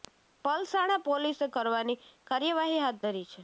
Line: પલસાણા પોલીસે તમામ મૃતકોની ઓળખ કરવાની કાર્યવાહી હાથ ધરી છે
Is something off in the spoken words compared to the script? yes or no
yes